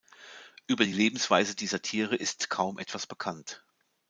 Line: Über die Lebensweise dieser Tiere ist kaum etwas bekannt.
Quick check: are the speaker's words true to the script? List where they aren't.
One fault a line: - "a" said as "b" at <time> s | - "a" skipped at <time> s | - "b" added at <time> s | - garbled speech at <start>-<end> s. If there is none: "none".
none